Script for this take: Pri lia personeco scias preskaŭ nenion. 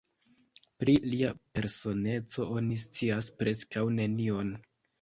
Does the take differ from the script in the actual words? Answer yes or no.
yes